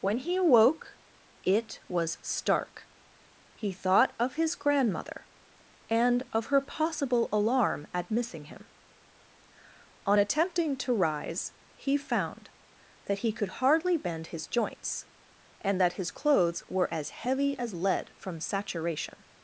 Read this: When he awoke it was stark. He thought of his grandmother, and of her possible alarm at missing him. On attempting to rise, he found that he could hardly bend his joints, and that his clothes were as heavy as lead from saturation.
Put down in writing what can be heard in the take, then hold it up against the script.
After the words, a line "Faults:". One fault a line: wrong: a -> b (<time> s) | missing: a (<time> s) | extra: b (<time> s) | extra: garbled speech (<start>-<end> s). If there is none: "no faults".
When he awoke it was stark. He thought of his grandmother, and of her possible alarm at missing him. On attempting to rise, he found that he could hardly bend his joints, and that his clothes were as heavy as lead from saturation.
Faults:
no faults